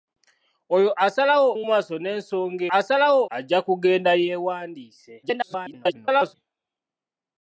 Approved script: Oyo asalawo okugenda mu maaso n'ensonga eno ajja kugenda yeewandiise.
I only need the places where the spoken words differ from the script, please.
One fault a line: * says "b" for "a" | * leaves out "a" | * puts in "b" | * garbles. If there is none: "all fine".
* leaves out "okugenda"
* says "asalawo" for "eno"
* garbles